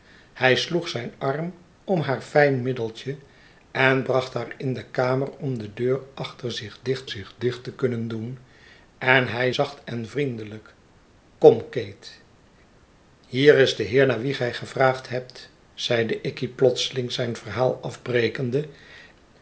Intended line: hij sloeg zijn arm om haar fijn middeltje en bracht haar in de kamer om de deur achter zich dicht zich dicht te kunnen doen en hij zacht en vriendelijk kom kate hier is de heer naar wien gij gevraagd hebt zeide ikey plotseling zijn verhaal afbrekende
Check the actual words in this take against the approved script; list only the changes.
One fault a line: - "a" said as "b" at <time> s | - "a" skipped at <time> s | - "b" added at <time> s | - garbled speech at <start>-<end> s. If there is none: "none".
none